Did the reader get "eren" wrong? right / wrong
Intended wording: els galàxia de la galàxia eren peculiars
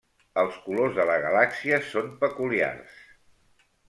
wrong